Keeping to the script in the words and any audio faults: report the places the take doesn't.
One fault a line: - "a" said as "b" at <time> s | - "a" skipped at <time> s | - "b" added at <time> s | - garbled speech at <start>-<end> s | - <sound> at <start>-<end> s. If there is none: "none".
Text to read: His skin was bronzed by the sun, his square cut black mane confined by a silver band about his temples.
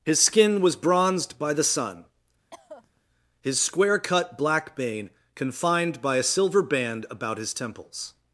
- cough at 2.5-3.0 s
- "mane" said as "bane" at 4.8 s